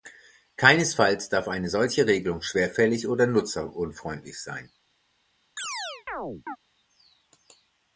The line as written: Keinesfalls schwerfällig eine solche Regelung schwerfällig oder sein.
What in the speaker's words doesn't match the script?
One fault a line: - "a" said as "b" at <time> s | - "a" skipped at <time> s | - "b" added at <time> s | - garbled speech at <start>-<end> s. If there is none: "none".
- "schwerfällig" said as "darf" at 1.3 s
- "nutzerunfreundlich" added at 3.3 s